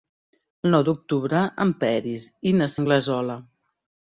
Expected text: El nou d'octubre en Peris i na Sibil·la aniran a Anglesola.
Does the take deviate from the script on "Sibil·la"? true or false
true